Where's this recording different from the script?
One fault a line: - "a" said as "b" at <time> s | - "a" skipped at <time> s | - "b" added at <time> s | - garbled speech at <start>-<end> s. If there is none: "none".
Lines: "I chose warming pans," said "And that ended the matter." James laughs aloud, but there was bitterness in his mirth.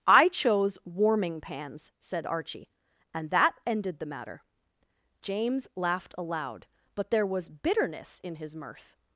- "Archie" added at 2.2 s
- "laughs" said as "laughed" at 5.8 s